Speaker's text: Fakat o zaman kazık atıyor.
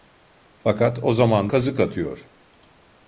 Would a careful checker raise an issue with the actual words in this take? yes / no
no